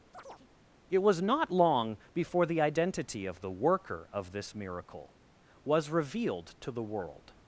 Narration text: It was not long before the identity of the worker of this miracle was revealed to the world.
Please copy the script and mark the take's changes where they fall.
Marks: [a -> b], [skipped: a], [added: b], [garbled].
It was not long before the identity of the worker of this miracle was revealed to the world.